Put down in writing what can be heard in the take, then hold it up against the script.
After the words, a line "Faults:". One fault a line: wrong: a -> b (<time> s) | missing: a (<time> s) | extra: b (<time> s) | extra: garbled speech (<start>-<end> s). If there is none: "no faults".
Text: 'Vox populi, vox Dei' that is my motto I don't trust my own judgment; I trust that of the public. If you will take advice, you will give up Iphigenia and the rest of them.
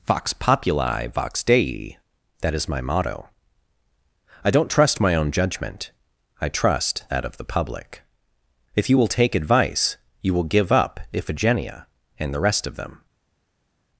'Vox populi, vox Dei' that is my motto I don't trust my own judgment; I trust that of the public. If you will take advice, you will give up Iphigenia and the rest of them.
Faults:
no faults